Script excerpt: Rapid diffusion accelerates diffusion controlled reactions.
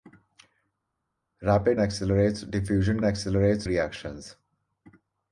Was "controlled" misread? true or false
true